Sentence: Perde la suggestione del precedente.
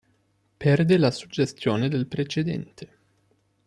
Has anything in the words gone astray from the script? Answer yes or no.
no